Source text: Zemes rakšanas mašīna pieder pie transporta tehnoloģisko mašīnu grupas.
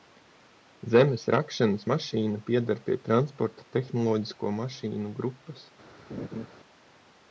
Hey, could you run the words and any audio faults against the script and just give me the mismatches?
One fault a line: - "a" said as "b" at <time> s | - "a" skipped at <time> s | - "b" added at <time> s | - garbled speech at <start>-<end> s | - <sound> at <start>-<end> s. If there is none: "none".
- laugh at 6.1-6.5 s